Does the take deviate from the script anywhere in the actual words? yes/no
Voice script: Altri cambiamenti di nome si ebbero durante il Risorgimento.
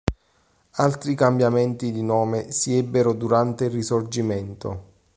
no